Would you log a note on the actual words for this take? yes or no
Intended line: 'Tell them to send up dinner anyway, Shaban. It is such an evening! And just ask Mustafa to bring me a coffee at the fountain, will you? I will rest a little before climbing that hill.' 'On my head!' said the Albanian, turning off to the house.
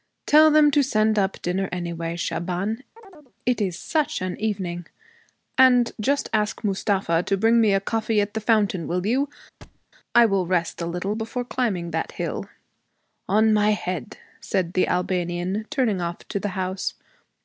no